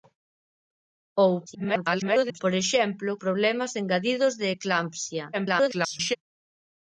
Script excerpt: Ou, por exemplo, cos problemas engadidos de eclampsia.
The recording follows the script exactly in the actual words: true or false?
false